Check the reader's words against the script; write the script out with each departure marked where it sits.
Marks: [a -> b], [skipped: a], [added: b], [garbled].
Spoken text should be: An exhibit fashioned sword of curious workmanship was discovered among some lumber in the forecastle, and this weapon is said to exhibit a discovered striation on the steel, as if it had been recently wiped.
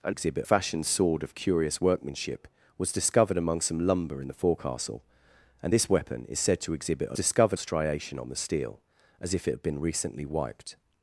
An exhibit fashioned sword of curious workmanship was discovered among some lumber in the forecastle, and this weapon is said to exhibit a discovered striation on the steel, as if it had been recently wiped.